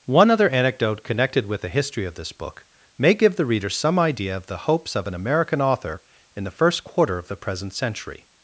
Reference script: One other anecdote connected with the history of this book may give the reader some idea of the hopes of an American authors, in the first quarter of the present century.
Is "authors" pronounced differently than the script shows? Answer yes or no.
yes